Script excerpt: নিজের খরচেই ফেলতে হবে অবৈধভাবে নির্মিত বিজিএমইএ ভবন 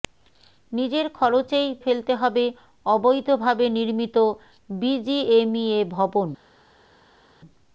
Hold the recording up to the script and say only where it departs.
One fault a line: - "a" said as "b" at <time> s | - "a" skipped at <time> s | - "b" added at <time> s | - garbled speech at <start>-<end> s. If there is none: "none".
none